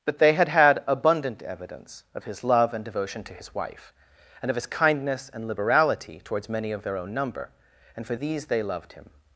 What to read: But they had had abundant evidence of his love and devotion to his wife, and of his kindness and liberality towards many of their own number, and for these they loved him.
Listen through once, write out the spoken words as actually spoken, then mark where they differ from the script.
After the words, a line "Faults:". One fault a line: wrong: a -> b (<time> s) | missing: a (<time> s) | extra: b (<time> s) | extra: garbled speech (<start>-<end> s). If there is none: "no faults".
But they had had abundant evidence of his love and devotion to his wife, and of his kindness and liberality towards many of their own number, and for these they loved him.
Faults:
no faults